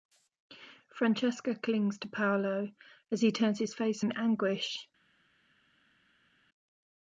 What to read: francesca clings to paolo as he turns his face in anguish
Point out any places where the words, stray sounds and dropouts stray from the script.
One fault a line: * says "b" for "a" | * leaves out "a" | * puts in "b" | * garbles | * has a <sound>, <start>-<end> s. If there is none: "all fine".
all fine